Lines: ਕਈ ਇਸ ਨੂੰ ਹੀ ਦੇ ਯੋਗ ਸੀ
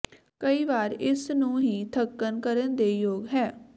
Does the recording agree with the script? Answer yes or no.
no